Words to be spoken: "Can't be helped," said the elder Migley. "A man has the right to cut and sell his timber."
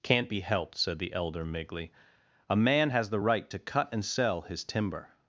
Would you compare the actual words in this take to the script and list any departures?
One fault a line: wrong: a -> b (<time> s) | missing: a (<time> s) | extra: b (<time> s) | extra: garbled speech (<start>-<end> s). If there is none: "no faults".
no faults